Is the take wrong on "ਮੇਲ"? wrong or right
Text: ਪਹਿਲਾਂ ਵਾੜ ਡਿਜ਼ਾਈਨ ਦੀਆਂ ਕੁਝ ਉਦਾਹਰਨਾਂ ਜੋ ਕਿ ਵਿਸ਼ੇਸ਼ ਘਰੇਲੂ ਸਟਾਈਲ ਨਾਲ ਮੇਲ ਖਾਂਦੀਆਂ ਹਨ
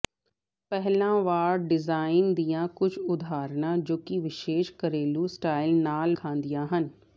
wrong